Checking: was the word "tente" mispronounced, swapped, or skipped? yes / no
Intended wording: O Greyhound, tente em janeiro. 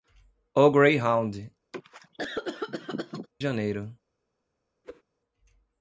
yes